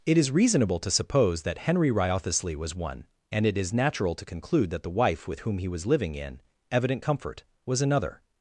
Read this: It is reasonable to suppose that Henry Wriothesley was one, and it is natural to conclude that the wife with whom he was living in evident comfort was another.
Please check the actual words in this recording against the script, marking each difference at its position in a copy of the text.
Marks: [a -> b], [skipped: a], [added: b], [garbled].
It is reasonable to suppose that Henry Wriothesley was one, and it is natural to conclude that the wife with whom he was living in evident comfort was another.